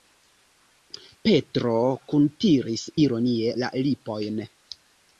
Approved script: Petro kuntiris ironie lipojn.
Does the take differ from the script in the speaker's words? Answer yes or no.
yes